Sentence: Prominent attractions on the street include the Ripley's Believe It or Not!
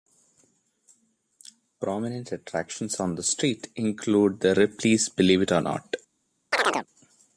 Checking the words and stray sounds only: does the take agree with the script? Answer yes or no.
no